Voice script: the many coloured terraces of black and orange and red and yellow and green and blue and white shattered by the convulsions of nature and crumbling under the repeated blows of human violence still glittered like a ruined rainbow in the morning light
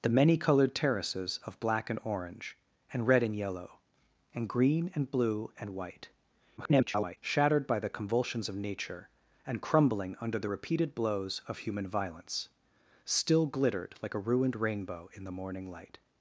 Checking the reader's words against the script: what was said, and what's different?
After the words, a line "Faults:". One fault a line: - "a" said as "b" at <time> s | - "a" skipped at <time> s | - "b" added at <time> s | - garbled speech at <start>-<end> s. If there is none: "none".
the many coloured terraces of black and orange and red and yellow and green and blue and white [garbled] shattered by the convulsions of nature and crumbling under the repeated blows of human violence still glittered like a ruined rainbow in the morning light
Faults:
- garbled speech at 6.6-7.2 s